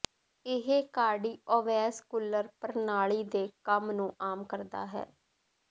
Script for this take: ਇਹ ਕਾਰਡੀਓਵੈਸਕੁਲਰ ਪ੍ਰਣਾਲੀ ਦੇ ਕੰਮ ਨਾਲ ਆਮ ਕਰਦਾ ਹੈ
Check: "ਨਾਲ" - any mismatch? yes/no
yes